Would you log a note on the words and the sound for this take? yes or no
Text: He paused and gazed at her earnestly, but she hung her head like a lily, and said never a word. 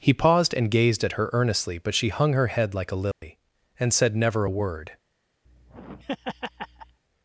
yes